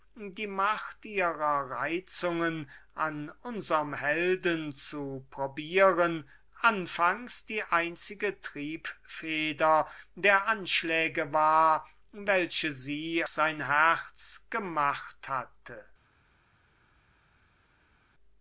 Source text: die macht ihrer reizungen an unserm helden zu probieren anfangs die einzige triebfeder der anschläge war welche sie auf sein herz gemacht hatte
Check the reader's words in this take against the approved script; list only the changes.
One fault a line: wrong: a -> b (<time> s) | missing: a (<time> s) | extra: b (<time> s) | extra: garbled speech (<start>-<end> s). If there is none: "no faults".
missing: auf (13.2 s)